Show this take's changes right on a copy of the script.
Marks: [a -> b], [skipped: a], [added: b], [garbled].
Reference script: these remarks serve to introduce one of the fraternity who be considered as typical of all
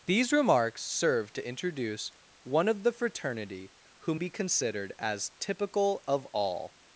these remarks serve to introduce one of the fraternity who be considered as typical of all